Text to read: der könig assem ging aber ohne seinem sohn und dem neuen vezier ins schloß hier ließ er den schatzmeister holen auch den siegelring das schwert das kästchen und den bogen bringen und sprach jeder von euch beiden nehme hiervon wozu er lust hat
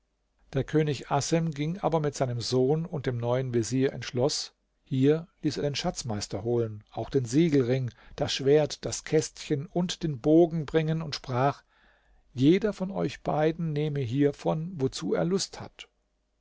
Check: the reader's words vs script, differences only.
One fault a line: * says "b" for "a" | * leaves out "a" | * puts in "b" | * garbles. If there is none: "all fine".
* says "mit" for "ohne"